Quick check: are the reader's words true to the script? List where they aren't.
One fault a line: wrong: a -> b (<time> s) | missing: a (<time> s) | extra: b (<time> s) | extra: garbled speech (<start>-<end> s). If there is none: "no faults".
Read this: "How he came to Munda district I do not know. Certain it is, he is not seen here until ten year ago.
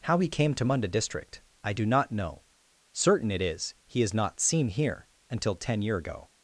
no faults